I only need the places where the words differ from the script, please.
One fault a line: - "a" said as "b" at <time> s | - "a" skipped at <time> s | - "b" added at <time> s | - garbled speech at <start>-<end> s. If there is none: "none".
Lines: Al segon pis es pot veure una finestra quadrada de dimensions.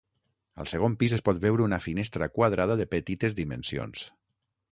- "petites" added at 2.9 s